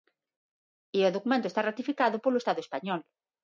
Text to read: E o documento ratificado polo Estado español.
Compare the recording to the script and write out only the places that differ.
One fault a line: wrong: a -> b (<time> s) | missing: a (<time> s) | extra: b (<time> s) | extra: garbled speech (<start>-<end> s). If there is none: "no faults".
extra: está (1.5 s)